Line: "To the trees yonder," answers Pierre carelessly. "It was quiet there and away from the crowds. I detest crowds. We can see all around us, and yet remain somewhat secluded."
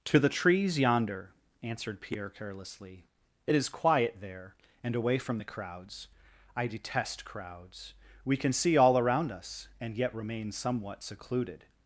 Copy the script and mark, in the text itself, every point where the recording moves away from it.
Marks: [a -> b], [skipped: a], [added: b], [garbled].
"To the trees yonder," [answers -> answered] Pierre carelessly. "It [was -> is] quiet there and away from the crowds. I detest crowds. We can see all around us, and yet remain somewhat secluded."